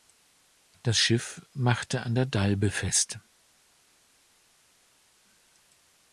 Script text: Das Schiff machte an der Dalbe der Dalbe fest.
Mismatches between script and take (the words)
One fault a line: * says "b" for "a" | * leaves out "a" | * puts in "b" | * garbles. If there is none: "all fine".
* leaves out "der Dalbe"